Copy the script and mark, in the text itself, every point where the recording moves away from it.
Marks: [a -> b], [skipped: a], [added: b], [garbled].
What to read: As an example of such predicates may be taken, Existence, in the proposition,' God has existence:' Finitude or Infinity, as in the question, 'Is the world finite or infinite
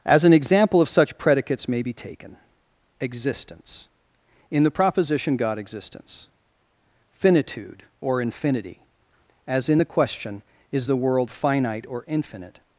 As an example of such predicates may be taken, Existence, in the proposition,' God [skipped: has] existence:' Finitude or Infinity, as in the question, 'Is the world finite or infinite